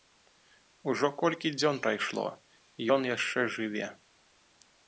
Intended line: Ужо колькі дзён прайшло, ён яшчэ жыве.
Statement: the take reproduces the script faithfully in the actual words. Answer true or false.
true